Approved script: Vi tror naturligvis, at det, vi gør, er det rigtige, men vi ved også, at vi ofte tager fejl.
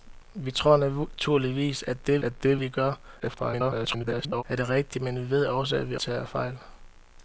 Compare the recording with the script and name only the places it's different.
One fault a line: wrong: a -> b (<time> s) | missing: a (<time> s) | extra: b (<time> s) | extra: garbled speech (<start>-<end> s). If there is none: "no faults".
extra: at det (2.2 s)
extra: garbled speech (3.2-4.4 s)
missing: ofte (6.0 s)